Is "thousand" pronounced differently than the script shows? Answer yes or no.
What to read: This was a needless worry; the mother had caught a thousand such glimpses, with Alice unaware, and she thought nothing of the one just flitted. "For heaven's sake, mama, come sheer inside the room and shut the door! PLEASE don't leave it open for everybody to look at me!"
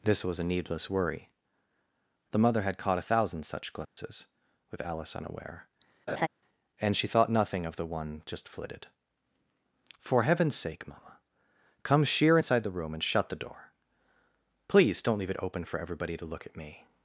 no